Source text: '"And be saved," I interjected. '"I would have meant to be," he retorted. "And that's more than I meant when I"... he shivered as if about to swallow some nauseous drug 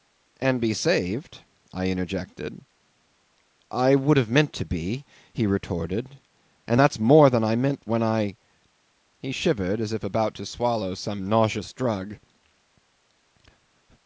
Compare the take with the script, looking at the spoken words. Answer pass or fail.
pass